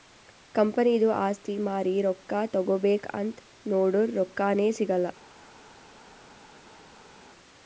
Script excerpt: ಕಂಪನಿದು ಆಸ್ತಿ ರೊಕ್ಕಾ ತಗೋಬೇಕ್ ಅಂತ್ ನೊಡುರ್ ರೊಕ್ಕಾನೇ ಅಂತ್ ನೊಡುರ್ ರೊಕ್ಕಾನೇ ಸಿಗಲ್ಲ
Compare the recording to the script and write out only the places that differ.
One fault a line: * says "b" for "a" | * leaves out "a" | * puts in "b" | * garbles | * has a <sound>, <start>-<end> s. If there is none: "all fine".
* puts in "ಮಾರಿ"
* leaves out "ಅಂತ್ ನೊಡುರ್ ರೊಕ್ಕಾನೇ"